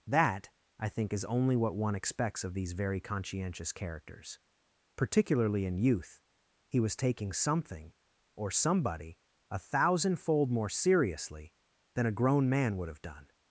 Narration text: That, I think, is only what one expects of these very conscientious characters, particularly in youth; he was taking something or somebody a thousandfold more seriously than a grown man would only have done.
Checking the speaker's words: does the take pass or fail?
fail